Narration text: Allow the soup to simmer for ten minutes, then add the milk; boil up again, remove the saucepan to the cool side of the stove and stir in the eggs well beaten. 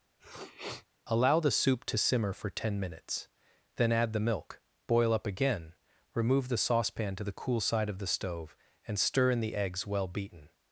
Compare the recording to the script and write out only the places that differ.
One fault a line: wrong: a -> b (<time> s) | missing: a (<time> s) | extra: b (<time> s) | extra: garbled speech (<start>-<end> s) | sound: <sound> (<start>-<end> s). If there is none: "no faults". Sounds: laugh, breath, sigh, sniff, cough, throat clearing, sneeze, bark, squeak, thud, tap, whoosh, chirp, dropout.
sound: sniff (0.2-0.9 s)